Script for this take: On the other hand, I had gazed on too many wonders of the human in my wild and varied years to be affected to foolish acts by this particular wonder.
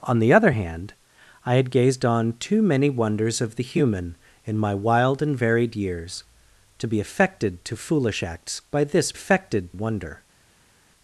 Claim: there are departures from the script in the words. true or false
true